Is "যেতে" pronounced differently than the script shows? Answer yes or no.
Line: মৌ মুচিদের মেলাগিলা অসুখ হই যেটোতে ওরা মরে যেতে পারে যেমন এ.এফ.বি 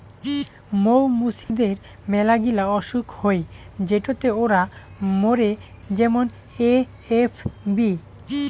yes